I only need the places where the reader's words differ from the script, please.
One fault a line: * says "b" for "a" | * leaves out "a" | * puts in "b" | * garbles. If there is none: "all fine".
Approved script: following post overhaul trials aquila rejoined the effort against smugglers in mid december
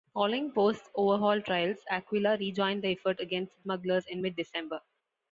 all fine